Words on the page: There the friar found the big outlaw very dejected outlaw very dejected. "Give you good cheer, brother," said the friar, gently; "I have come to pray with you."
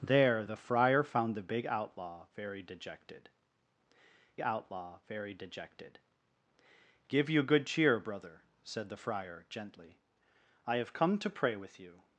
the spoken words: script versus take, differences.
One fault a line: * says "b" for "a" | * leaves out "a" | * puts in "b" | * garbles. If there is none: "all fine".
all fine